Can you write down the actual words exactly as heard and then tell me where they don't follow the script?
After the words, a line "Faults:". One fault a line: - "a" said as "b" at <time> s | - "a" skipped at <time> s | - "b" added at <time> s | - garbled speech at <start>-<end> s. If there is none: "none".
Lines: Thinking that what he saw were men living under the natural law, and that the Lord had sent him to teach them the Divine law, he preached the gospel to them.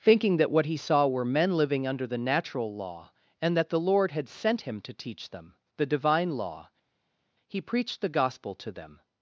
Thinking that what he saw were men living under the natural law, and that the Lord had sent him to teach them the Divine law, he preached the gospel to them.
Faults:
none